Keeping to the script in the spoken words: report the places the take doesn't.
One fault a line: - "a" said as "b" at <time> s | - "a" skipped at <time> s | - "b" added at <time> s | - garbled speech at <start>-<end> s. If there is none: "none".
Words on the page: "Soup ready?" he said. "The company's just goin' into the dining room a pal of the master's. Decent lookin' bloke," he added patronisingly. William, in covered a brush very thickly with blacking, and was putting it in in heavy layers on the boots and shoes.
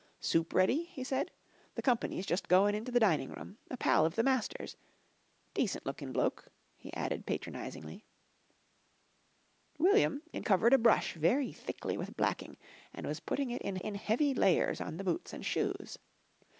none